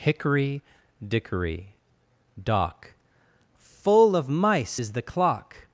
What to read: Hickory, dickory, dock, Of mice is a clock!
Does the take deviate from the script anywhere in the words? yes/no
yes